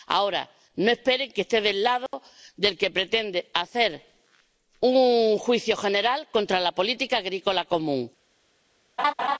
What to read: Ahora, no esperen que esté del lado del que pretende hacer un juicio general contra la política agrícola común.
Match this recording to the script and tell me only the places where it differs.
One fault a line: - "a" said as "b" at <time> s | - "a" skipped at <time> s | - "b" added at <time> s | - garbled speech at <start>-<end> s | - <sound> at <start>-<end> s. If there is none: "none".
- dropout at 2.1-2.1 s
- laugh at 9.0-9.4 s